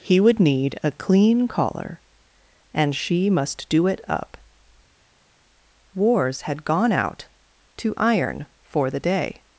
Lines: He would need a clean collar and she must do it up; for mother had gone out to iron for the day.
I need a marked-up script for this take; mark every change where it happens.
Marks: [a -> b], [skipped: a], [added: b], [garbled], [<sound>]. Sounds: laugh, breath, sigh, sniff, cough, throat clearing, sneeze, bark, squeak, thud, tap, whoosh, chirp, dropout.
He would need a clean collar and she must do it up; [for mother -> wars] had gone out to iron for the day.